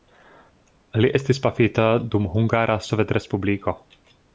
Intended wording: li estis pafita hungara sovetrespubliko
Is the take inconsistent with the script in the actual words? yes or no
yes